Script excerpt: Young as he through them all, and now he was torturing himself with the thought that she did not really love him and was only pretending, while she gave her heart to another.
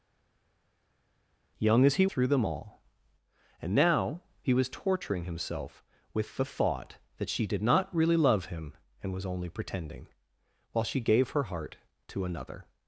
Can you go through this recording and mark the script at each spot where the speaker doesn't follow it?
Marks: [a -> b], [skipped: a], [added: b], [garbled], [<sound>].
Young as he through them all, and now he was torturing himself with the thought that she did not really love him and was only pretending, while she gave her heart to another.